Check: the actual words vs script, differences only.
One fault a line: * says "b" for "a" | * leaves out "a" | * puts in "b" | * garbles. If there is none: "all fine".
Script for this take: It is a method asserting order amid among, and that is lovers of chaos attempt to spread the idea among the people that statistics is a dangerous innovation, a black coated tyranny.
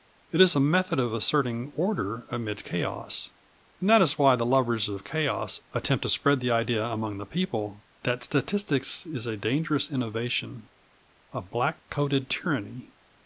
* puts in "of"
* says "chaos" for "among"
* puts in "why the"